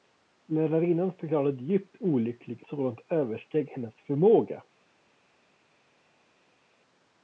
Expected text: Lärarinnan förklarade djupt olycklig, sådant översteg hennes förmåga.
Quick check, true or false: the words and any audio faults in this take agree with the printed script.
true